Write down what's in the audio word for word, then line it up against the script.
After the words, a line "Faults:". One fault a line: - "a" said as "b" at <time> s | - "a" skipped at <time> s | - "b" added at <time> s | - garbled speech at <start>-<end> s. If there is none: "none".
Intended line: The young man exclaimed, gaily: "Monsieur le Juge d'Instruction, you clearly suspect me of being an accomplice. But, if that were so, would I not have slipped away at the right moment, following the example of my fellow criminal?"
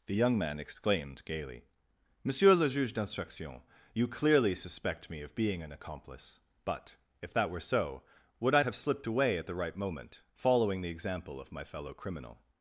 The young man exclaimed, gaily: "Monsieur le Juge d'Instruction, you clearly suspect me of being an accomplice. But, if that were so, would I have slipped away at the right moment, following the example of my fellow criminal?"
Faults:
- "not" skipped at 8.6 s